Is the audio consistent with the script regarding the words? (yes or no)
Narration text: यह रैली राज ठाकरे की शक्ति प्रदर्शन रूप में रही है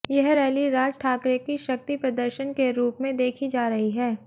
no